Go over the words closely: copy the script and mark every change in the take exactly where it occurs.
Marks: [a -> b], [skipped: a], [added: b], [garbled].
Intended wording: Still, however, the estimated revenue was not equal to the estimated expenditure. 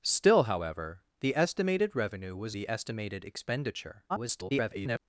Still, however, the estimated revenue was [skipped: not equal to] the estimated expenditure. [garbled]